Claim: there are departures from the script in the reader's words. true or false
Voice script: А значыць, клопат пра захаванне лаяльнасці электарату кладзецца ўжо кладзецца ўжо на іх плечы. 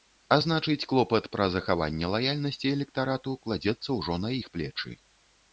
true